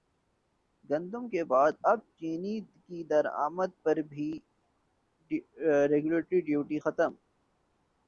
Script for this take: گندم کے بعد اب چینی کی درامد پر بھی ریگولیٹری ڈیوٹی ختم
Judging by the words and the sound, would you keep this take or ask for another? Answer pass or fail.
pass